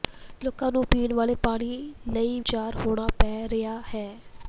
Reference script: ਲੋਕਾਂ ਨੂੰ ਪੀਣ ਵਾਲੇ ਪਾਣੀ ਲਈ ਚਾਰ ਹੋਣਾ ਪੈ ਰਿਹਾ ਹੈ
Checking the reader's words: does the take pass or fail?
pass